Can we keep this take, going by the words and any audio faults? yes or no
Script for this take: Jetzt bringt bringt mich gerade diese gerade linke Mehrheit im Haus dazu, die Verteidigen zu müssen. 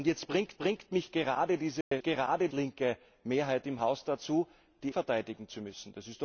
no